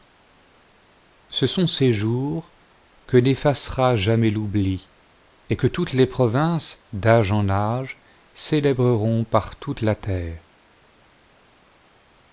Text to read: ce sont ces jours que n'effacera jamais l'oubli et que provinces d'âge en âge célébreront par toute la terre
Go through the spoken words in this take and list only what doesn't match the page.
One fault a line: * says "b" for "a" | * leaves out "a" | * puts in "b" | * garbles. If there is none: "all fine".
* puts in "toutes les"